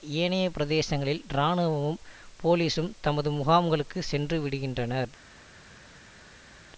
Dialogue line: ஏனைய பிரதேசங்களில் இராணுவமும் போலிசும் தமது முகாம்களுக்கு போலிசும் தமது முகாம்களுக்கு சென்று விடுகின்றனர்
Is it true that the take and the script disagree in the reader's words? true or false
true